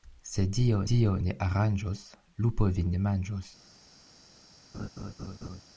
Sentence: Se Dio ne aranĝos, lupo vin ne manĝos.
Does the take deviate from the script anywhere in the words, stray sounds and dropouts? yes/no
yes